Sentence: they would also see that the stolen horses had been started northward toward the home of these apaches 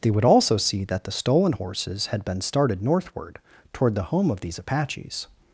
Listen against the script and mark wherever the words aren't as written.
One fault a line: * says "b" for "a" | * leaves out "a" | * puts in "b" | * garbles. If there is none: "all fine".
all fine